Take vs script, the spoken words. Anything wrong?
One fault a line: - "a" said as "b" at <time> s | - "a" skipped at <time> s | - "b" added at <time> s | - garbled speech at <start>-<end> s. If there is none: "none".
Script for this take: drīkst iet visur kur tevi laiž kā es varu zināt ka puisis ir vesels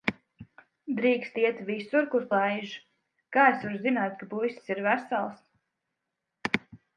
- "tevi" skipped at 2.2 s